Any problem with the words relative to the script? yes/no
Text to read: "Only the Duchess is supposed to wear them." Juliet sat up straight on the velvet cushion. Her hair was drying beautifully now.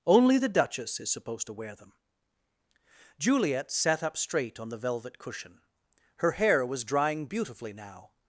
no